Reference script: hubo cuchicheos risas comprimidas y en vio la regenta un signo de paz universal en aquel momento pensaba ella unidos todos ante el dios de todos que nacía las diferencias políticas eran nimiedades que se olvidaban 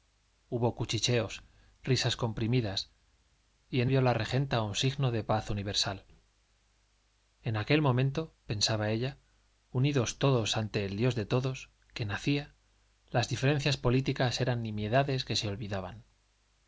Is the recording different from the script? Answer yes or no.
no